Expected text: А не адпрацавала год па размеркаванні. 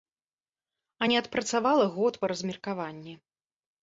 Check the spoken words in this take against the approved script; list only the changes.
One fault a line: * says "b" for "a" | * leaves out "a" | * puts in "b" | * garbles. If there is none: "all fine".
all fine